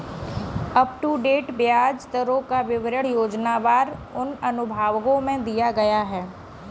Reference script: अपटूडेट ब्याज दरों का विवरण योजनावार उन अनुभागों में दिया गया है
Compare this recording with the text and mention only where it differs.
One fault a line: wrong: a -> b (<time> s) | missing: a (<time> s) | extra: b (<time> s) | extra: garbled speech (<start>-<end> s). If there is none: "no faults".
no faults